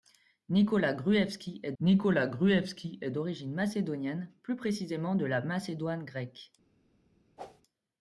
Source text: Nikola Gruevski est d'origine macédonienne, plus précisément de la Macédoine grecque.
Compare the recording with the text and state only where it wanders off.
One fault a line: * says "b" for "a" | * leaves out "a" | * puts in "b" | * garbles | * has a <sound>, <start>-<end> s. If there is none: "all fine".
* puts in "nikola Gruevski est"
* has a whoosh, 7.4-7.6 s